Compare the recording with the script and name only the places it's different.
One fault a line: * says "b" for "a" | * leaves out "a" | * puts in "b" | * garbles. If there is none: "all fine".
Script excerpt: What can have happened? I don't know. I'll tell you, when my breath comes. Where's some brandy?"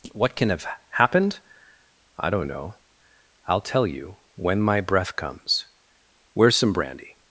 all fine